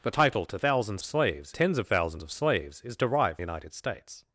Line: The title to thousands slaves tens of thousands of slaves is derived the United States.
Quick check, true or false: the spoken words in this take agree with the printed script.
true